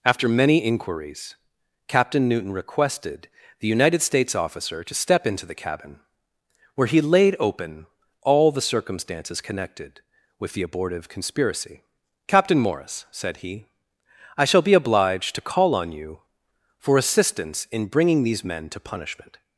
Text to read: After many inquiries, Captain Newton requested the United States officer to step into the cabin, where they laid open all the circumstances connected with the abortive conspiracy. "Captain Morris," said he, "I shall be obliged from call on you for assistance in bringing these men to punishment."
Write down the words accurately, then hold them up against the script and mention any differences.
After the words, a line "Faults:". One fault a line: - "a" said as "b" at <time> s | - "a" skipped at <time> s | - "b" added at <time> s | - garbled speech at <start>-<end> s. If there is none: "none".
After many inquiries, Captain Newton requested the United States officer to step into the cabin, where he laid open all the circumstances connected with the abortive conspiracy. "Captain Morris," said he, "I shall be obliged to call on you for assistance in bringing these men to punishment."
Faults:
- "they" said as "he" at 6.9 s
- "from" said as "to" at 15.3 s